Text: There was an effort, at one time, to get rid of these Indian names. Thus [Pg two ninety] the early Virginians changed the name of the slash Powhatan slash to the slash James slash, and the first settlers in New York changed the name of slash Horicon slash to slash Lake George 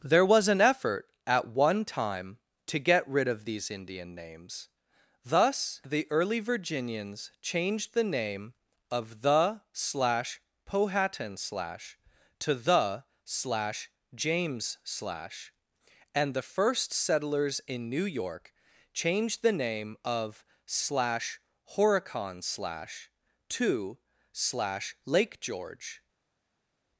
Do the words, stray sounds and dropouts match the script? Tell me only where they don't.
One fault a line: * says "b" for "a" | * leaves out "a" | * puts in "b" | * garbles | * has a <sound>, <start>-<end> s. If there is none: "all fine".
* leaves out "Pg two ninety"